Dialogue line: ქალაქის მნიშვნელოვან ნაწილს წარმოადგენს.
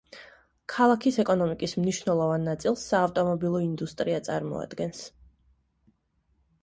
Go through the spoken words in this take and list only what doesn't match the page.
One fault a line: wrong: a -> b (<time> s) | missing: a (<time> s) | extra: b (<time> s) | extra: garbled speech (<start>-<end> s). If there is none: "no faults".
extra: ეკონომიკის (1.2 s)
extra: საავტომობილო ინდუსტრია (2.9 s)